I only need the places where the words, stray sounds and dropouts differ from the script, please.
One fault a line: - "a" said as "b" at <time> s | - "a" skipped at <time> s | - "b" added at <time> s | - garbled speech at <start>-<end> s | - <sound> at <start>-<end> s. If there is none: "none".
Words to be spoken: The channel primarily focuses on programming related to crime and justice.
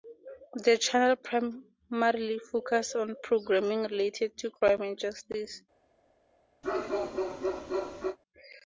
- bark at 6.6-8.2 s